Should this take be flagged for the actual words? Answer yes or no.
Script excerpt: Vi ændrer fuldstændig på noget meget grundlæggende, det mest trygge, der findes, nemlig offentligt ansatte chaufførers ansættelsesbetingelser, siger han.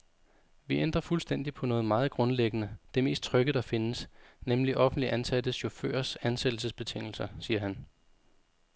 no